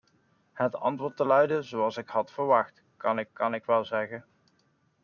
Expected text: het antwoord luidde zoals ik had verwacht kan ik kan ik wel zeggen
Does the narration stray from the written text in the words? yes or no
no